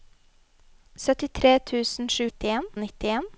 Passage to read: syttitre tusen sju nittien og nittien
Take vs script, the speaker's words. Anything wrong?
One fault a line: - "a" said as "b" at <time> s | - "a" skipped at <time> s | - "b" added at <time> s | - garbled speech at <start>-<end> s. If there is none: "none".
none